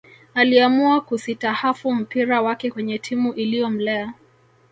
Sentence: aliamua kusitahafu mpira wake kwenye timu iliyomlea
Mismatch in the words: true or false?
false